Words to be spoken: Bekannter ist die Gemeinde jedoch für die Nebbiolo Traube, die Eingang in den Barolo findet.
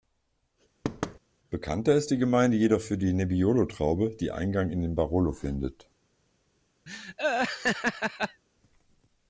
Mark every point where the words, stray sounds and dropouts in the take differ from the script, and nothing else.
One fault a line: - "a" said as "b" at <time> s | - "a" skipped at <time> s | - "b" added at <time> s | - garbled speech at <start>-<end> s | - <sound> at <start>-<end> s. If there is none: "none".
- thud at 0.8-1.2 s
- laugh at 6.9-8.4 s